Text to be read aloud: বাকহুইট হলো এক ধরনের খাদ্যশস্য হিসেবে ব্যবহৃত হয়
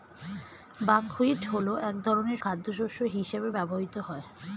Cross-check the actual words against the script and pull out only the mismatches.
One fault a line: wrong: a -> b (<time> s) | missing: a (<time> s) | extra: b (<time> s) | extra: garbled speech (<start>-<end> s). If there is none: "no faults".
no faults